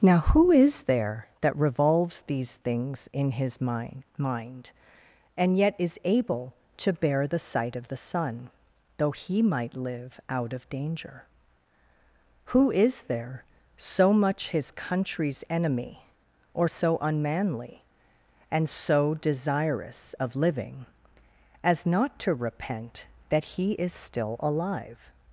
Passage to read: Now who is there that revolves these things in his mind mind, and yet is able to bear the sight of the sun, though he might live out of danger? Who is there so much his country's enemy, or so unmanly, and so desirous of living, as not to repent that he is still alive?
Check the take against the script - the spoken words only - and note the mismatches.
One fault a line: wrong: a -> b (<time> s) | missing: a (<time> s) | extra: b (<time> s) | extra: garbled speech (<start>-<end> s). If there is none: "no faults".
no faults